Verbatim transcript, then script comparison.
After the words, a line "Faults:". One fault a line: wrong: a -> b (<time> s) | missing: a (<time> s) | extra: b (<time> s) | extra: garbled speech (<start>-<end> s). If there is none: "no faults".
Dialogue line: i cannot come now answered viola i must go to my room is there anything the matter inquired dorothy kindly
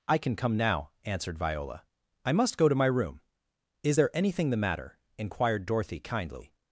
i can come now answered viola i must go to my room is there anything the matter inquired dorothy kindly
Faults:
wrong: cannot -> can (0.2 s)